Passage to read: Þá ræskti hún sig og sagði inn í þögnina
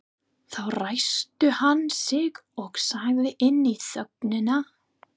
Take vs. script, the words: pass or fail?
fail